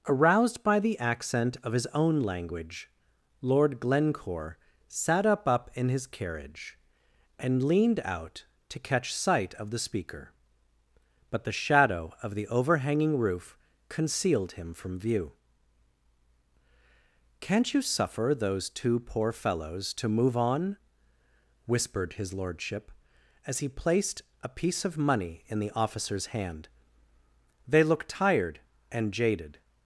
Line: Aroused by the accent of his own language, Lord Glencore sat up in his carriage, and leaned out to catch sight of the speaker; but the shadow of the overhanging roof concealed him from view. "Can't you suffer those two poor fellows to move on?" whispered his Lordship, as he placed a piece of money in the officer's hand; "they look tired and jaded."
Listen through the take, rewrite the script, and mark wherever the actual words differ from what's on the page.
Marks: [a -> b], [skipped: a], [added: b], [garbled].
Aroused by the accent of his own language, Lord Glencore sat up [added: up] in his carriage, and leaned out to catch sight of the speaker; but the shadow of the overhanging roof concealed him from view. "Can't you suffer those two poor fellows to move on?" whispered his Lordship, as he placed a piece of money in the officer's hand; "they look tired and jaded."